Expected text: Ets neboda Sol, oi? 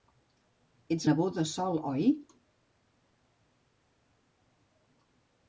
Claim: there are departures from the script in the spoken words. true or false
false